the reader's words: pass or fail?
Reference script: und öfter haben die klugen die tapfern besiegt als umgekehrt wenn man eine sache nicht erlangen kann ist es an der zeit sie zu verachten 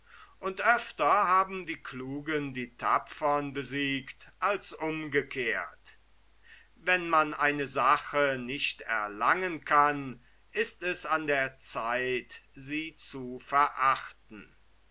pass